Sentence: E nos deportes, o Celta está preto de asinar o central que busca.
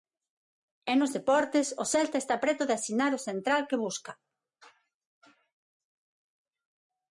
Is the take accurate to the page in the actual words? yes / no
yes